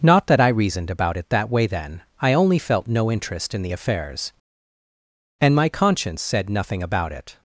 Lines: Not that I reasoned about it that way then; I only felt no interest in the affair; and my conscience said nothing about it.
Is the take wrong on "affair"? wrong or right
wrong